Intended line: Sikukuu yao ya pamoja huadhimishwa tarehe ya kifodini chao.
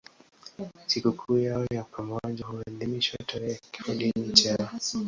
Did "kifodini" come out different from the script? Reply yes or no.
no